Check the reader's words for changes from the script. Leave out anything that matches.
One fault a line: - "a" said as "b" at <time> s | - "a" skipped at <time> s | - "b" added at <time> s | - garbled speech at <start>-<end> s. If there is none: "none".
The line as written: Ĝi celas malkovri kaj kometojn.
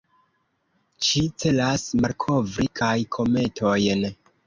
none